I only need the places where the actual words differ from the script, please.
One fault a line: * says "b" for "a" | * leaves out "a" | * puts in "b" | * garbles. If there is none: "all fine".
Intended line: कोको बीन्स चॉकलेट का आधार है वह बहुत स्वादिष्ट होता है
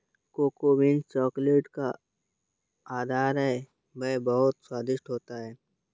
all fine